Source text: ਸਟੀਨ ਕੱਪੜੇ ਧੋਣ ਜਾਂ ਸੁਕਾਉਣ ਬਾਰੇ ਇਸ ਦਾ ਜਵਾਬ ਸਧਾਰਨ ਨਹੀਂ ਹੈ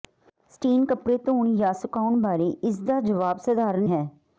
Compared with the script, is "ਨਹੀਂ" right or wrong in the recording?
wrong